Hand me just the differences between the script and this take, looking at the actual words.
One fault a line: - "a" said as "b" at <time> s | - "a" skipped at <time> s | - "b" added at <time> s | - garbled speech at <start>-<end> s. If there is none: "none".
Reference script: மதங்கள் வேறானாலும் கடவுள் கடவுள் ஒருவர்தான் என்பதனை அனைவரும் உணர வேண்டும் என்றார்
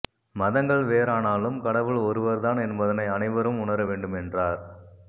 - "கடவுள்" skipped at 2.0 s